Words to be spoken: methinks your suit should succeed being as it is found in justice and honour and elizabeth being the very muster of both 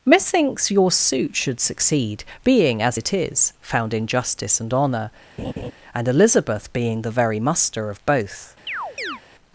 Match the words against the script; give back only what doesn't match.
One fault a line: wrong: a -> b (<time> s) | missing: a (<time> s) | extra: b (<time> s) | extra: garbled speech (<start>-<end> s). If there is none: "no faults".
no faults